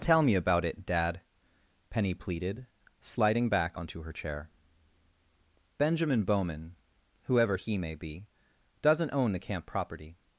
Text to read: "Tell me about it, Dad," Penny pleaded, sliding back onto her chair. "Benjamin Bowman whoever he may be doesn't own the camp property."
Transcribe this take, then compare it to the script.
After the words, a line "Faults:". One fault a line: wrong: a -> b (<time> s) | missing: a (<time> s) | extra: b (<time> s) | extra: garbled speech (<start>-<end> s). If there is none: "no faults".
"Tell me about it, Dad," Penny pleaded, sliding back onto her chair. "Benjamin Bowman whoever he may be doesn't own the camp property."
Faults:
no faults